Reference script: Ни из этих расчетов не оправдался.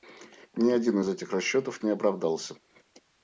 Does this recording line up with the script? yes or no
no